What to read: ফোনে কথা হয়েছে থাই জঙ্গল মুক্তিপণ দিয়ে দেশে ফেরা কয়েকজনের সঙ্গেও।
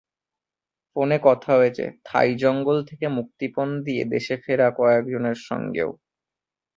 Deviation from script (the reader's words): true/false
true